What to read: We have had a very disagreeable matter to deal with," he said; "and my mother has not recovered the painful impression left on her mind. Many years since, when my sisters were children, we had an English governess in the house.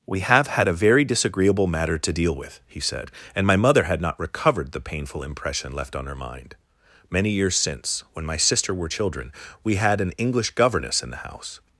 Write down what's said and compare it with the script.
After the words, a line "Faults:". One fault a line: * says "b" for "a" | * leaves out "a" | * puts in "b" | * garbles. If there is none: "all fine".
We have had a very disagreeable matter to deal with," he said; "and my mother had not recovered the painful impression left on her mind. Many years since, when my sister were children, we had an English governess in the house.
Faults:
* says "had" for "has"
* says "sister" for "sisters"